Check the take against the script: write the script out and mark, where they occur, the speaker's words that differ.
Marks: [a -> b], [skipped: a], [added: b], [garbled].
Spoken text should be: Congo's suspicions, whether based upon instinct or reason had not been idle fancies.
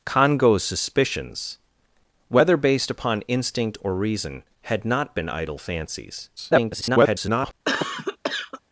Congo's suspicions, whether based upon instinct or reason had not been idle fancies. [garbled]